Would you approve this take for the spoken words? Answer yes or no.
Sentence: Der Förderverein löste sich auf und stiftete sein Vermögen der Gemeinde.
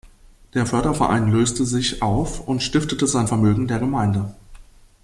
yes